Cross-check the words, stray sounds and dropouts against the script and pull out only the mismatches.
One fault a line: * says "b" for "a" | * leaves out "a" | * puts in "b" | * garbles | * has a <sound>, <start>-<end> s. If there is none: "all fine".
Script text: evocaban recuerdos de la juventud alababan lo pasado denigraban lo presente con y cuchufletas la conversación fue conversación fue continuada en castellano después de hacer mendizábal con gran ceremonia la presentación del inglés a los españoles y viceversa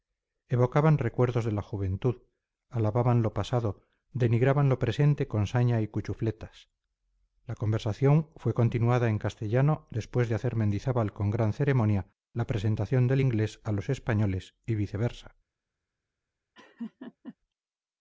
* puts in "saña"
* leaves out "conversación fue"
* has a laugh, 16.5-17.4 s